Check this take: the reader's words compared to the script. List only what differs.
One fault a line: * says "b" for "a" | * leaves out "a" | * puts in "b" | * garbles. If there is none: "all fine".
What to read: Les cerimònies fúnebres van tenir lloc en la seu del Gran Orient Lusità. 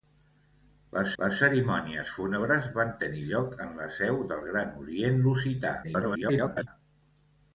* puts in "les"
* garbles